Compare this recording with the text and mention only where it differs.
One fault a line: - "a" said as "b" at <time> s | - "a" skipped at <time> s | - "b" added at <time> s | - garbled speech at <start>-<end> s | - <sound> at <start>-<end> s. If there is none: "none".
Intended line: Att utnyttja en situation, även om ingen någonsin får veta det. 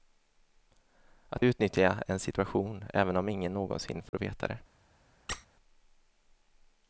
- dropout at 4.1-4.1 s
- squeak at 5.3-5.5 s